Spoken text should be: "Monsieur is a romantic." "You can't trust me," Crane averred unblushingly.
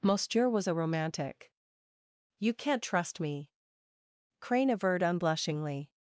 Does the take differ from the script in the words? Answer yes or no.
yes